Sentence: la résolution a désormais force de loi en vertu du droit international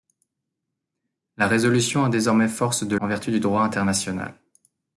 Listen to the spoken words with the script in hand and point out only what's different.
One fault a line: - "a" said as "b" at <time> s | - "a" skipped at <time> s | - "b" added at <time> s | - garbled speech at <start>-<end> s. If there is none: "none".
- "loi" skipped at 3.0 s